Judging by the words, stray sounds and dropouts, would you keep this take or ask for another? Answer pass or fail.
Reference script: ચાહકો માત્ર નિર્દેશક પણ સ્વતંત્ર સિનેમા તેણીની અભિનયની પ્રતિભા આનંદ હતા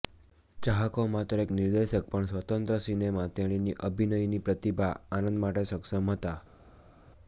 fail